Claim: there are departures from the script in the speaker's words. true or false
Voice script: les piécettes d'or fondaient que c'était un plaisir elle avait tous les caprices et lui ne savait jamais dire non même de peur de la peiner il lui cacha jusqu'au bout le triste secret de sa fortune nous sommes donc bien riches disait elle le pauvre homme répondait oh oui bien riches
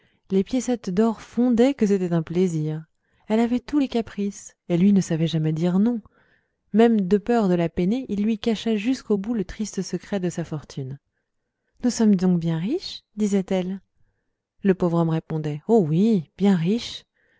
false